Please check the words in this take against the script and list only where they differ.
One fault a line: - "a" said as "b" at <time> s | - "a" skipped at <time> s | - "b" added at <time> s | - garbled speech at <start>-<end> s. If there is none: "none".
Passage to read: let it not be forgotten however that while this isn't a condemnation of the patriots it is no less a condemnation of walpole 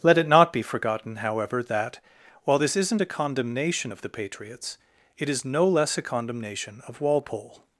none